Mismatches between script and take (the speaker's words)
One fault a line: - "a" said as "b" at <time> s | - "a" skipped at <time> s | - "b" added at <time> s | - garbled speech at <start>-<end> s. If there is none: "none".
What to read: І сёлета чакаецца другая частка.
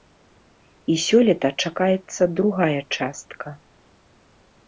none